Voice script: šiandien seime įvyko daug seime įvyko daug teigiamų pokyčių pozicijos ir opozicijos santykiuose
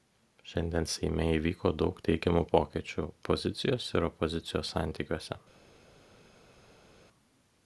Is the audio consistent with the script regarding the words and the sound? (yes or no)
no